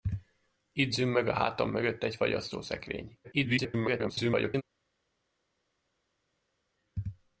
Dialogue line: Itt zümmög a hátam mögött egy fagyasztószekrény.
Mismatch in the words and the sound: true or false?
true